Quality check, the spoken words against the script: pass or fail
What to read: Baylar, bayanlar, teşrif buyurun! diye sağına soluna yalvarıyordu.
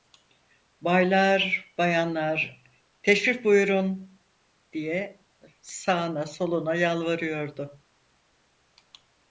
pass